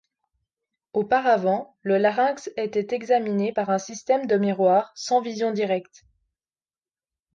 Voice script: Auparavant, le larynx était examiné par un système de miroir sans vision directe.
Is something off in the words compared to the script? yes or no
no